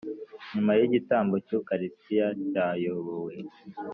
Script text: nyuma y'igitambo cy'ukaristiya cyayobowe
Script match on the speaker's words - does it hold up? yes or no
yes